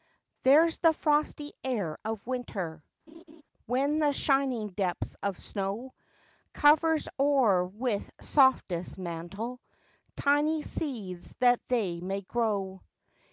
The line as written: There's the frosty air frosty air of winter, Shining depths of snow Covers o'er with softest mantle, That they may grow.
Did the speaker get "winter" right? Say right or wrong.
wrong